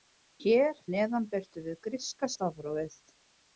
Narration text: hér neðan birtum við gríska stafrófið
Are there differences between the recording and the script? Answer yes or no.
no